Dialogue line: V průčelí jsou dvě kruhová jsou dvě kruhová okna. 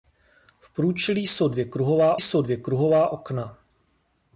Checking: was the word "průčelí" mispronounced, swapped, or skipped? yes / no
no